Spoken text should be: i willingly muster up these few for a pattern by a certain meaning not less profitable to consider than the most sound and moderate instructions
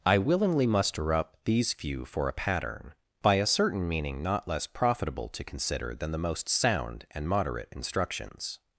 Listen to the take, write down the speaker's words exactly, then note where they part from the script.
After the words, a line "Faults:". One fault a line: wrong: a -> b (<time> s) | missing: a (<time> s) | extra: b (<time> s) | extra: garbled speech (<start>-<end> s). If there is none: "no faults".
i willingly muster up these few for a pattern by a certain meaning not less profitable to consider than the most sound and moderate instructions
Faults:
no faults